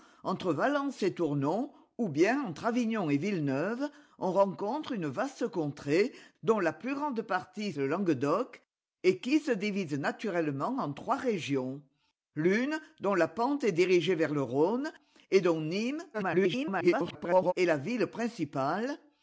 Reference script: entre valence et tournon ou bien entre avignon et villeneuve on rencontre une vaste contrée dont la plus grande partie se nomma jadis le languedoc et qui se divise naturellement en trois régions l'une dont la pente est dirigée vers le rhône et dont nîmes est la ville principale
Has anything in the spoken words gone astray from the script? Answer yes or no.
yes